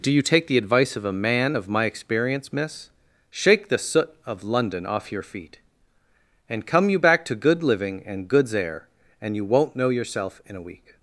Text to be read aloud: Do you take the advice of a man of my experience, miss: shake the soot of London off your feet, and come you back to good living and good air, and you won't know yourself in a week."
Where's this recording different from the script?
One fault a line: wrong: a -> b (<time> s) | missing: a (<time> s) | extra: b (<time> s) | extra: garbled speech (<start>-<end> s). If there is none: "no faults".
wrong: good -> goods (8.3 s)